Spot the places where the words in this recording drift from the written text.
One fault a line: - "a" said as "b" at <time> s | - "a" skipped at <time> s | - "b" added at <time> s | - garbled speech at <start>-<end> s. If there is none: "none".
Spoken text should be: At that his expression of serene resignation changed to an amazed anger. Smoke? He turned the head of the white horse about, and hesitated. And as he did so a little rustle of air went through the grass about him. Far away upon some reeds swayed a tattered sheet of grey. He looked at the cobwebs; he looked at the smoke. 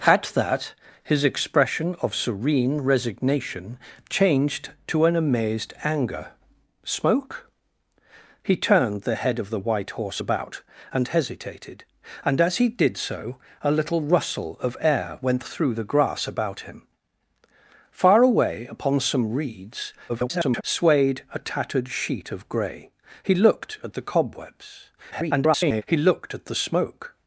- garbled speech at 20.1-20.6 s
- garbled speech at 25.1-25.8 s